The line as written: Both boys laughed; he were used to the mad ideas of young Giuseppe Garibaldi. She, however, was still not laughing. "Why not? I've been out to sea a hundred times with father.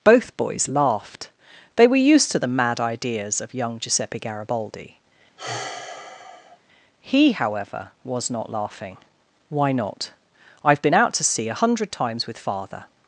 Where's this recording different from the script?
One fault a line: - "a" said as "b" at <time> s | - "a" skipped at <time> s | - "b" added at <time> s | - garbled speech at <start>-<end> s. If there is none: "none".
- "he" said as "they" at 1.8 s
- "She" said as "He" at 7.0 s
- "still" skipped at 8.3 s